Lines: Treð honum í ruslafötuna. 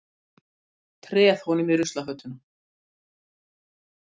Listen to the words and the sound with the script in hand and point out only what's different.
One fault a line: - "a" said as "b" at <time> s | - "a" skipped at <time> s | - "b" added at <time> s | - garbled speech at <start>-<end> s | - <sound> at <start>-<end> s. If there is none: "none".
none